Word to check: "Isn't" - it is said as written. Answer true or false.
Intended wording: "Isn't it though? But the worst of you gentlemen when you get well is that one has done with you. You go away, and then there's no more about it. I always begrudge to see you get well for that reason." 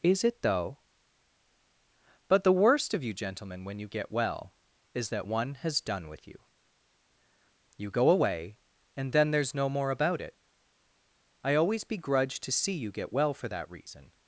false